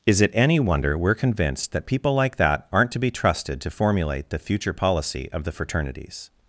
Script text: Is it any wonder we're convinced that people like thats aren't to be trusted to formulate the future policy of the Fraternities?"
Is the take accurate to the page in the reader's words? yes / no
no